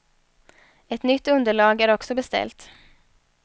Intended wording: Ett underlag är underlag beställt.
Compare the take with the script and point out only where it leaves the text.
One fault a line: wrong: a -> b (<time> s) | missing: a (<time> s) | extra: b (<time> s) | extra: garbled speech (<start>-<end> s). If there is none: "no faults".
extra: nytt (1.0 s)
wrong: underlag -> också (1.9 s)